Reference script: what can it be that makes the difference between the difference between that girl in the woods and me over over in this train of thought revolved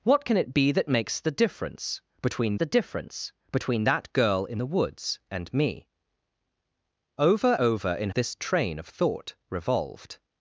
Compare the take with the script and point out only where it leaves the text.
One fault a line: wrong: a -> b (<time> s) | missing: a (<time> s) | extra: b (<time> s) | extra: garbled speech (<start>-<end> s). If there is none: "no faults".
no faults